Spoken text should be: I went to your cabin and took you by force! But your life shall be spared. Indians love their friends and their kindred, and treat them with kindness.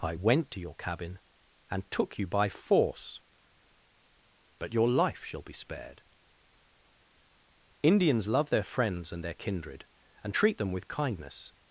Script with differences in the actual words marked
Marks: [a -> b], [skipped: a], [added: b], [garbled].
I went to your cabin and took you by force! But your life shall be spared. Indians love their friends and their kindred, and treat them with kindness.